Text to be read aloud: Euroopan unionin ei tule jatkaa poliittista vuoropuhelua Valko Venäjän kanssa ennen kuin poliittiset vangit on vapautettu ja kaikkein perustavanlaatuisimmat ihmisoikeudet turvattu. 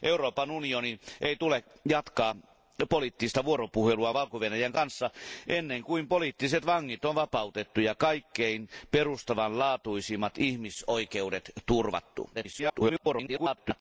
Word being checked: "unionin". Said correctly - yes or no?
yes